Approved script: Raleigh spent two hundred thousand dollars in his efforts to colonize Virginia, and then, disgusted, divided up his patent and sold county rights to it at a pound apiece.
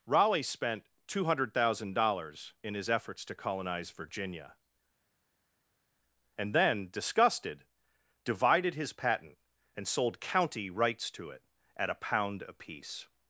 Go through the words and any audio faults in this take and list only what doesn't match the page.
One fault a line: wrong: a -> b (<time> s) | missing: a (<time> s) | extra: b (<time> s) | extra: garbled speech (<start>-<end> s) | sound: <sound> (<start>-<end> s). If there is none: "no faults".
missing: up (8.7 s)